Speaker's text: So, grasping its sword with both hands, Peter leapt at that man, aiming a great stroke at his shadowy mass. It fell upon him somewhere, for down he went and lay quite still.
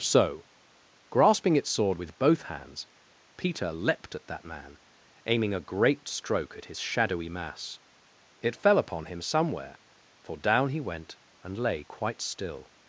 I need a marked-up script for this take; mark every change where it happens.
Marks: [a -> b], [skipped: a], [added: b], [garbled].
So, grasping its sword with both hands, Peter leapt at that man, aiming a great stroke at his shadowy mass. It fell upon him somewhere, for down he went and lay quite still.